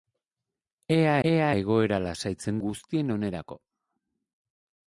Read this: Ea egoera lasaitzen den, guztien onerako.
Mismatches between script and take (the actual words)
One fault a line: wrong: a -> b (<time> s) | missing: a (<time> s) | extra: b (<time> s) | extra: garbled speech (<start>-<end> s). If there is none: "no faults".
extra: ea (1.3 s)
missing: den (2.6 s)